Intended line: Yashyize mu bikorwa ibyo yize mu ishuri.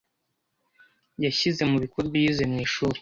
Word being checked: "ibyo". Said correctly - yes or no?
no